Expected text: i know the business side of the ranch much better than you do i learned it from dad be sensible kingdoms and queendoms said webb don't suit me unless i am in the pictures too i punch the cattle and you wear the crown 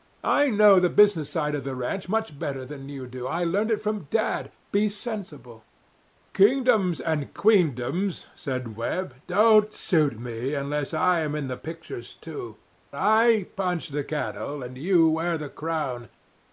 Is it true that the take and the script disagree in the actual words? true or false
false